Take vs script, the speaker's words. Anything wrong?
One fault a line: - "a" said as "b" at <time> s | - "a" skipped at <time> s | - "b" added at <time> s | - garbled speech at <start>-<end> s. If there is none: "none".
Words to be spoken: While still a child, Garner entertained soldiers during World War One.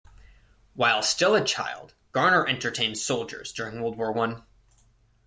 none